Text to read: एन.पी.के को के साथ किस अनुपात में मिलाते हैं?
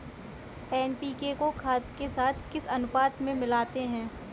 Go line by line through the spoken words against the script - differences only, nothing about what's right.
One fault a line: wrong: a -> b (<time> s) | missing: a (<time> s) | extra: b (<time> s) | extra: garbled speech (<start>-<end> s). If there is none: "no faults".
extra: खाद (1.5 s)